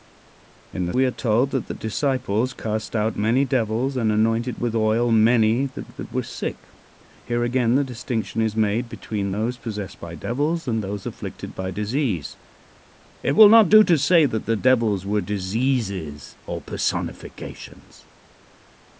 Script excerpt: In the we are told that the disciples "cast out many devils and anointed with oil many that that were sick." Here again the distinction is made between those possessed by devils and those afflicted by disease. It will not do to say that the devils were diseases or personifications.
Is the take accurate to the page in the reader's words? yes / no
yes